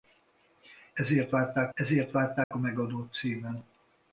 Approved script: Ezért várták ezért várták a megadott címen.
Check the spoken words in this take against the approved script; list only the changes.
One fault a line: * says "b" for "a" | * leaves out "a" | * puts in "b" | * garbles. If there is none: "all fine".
all fine